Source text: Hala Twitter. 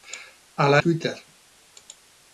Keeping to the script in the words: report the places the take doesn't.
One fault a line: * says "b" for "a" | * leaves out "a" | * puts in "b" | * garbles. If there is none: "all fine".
all fine